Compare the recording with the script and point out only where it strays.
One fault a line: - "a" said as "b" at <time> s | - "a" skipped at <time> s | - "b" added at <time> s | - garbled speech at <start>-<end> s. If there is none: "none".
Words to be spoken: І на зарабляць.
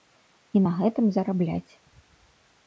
- "гэтым" added at 0.8 s